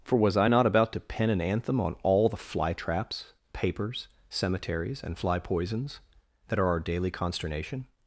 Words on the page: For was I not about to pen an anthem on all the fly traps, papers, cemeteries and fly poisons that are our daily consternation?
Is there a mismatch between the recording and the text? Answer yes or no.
no